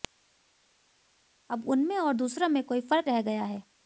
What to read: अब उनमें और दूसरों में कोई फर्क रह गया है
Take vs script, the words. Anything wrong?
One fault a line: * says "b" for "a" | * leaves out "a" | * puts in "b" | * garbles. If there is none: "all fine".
all fine